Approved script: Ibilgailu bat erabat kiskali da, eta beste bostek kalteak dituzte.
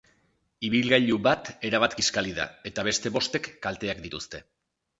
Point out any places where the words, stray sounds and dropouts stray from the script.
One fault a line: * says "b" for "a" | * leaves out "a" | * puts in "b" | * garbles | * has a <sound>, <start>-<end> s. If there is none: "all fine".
all fine